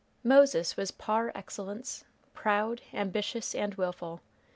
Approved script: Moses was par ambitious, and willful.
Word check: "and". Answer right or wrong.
right